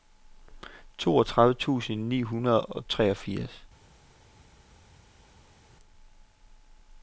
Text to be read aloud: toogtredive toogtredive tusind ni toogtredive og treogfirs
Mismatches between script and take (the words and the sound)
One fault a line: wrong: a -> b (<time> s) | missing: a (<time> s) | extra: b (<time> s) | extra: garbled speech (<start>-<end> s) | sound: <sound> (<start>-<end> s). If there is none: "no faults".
missing: toogtredive (1.5 s)
wrong: toogtredive -> hundrede (2.2 s)